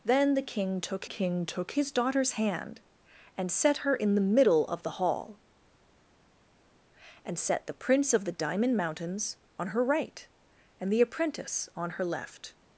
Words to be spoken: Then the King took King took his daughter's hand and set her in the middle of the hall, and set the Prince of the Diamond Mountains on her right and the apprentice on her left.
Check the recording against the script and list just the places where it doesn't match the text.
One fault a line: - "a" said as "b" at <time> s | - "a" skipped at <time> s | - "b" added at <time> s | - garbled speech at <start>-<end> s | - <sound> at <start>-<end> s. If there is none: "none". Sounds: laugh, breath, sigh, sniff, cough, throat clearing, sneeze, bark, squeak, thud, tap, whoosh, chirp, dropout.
none